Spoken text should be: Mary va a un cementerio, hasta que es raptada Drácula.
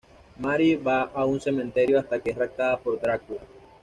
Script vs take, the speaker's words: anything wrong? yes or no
yes